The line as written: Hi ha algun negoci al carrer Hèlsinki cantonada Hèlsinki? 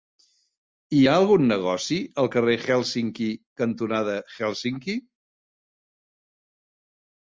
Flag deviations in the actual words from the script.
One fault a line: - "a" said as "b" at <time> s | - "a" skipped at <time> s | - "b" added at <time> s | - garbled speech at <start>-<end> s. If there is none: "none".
none